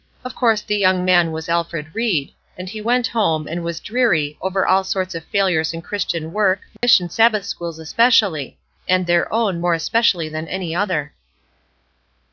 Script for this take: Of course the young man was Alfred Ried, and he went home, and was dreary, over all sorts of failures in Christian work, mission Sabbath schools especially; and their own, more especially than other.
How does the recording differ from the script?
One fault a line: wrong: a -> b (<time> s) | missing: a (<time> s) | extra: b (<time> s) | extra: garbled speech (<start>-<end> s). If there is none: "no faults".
extra: any (10.5 s)